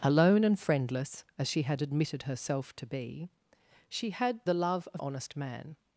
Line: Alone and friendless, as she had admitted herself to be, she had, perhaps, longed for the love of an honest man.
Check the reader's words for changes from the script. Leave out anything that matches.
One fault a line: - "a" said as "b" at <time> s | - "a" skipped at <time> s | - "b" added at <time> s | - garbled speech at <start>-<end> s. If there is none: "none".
- "perhaps longed for" skipped at 4.4 s
- "an" skipped at 5.0 s